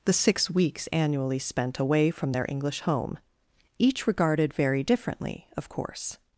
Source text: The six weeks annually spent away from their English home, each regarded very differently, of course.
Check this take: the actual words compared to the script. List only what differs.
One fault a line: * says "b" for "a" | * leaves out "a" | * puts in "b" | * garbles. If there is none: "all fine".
all fine